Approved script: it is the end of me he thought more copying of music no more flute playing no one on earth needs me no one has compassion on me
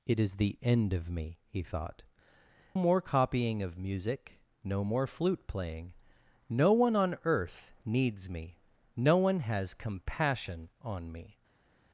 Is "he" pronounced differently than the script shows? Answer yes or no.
no